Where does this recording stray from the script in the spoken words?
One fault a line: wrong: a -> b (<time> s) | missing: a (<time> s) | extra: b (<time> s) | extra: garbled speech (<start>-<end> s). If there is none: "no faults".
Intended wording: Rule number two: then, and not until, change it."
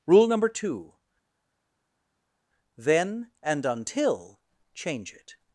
missing: not (3.6 s)